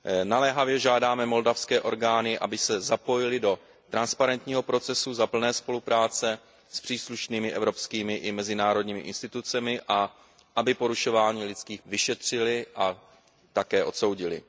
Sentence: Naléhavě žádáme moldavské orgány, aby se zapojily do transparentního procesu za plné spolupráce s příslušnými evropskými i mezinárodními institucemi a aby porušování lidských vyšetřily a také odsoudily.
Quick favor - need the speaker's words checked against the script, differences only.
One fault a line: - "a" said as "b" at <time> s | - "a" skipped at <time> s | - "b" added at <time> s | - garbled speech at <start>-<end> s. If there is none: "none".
none